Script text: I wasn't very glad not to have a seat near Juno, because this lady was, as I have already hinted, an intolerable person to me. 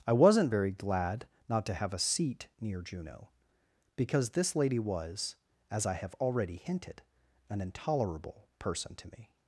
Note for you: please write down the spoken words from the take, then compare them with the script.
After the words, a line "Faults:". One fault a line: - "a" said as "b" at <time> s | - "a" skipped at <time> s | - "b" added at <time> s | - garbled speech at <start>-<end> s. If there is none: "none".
I wasn't very glad not to have a seat near Juno, because this lady was, as I have already hinted, an intolerable person to me.
Faults:
none